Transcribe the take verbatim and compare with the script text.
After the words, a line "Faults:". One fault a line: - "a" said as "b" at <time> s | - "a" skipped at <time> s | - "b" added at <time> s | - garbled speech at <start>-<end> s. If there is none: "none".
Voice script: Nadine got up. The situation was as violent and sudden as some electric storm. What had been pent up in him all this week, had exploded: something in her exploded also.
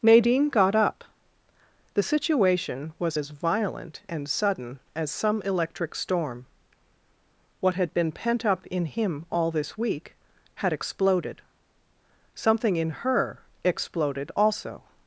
Nadine got up. The situation was as violent and sudden as some electric storm. What had been pent up in him all this week, had exploded: something in her exploded also.
Faults:
none